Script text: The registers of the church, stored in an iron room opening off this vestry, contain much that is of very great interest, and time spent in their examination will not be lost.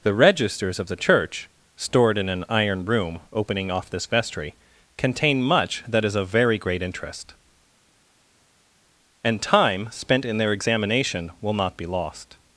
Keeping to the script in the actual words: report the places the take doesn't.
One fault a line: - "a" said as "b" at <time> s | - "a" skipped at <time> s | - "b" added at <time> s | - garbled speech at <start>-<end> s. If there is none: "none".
none